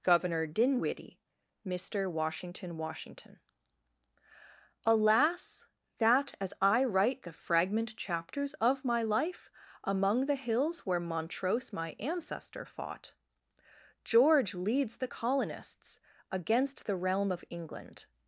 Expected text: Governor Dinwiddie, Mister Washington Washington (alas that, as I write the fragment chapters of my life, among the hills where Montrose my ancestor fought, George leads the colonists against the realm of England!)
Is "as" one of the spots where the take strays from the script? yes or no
no